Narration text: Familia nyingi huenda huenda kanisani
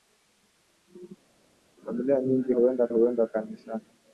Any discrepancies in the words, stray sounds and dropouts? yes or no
no